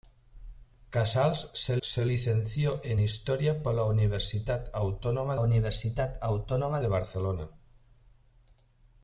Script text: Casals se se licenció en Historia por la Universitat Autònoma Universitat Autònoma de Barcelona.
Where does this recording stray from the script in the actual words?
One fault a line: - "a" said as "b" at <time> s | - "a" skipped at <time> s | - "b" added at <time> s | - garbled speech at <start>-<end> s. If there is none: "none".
none